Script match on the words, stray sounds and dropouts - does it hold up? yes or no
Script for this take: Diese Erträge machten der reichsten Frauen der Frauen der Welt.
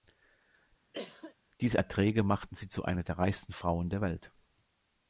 no